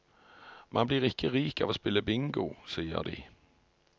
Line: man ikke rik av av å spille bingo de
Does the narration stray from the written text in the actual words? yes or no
yes